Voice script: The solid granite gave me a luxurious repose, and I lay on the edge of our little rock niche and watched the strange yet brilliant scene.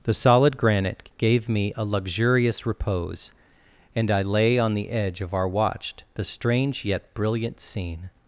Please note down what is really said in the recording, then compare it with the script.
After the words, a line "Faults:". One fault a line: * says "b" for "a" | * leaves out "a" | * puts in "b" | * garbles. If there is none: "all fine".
The solid granite gave me a luxurious repose, and I lay on the edge of our watched the strange yet brilliant scene.
Faults:
* leaves out "little rock niche and"